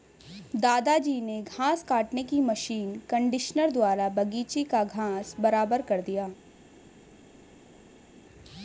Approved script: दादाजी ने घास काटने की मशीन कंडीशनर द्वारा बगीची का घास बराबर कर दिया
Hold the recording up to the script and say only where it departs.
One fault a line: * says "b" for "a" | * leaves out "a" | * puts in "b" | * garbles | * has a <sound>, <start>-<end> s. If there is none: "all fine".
all fine